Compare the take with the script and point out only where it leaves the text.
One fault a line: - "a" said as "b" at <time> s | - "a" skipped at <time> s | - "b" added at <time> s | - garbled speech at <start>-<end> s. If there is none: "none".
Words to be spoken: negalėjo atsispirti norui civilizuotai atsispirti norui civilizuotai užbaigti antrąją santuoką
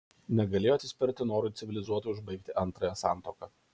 - "atsispirti norui civilizuotai" skipped at 2.1 s